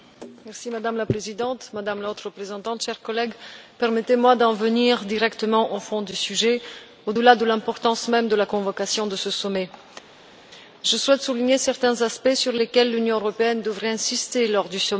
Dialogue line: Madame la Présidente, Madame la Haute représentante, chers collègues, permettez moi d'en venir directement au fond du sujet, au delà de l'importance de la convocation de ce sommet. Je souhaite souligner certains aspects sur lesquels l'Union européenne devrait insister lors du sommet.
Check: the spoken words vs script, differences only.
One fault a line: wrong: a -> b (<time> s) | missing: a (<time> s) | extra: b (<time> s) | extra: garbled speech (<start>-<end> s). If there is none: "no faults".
extra: même (8.1 s)